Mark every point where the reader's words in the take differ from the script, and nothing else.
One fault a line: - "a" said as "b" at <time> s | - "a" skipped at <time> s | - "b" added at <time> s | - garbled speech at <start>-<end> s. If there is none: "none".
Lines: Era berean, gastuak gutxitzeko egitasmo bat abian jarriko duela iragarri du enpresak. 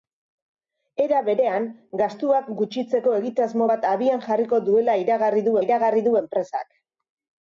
- "iragarri du" added at 5.6 s